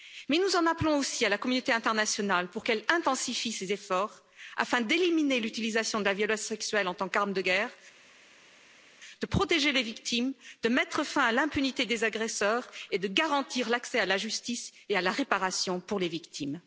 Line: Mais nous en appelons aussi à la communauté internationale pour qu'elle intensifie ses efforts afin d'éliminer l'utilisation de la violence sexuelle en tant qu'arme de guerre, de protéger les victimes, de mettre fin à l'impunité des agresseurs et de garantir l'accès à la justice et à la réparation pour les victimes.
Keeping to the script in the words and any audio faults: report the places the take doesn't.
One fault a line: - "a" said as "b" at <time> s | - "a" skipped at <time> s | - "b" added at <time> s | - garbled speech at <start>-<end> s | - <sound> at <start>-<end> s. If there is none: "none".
none